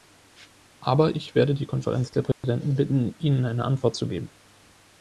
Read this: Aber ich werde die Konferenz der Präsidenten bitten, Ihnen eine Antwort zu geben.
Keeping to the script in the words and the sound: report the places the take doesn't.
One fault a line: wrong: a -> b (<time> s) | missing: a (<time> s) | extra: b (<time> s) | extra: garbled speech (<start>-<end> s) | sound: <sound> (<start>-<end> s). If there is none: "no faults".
sound: dropout (2.3-2.4 s)